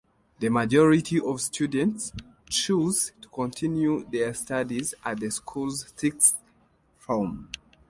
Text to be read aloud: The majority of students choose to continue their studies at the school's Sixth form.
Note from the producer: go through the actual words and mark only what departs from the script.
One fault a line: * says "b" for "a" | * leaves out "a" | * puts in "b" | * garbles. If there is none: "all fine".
all fine